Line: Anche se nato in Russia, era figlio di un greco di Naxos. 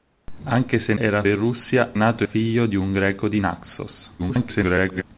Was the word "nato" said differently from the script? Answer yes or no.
yes